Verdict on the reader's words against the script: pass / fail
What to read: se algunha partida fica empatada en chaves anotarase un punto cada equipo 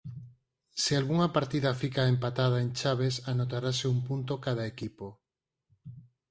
pass